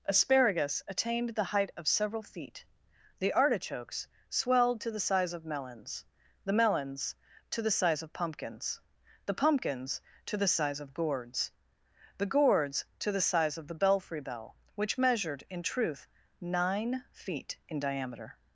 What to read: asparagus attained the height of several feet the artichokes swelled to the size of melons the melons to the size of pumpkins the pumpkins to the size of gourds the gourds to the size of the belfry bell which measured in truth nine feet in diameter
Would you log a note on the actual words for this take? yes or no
no